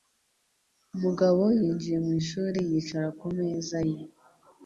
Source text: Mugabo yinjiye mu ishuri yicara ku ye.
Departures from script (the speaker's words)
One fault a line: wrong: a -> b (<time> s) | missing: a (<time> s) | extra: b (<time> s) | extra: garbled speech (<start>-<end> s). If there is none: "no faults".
extra: meza (3.4 s)